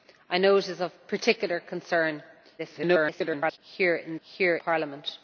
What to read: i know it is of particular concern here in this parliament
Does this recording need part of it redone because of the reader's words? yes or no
yes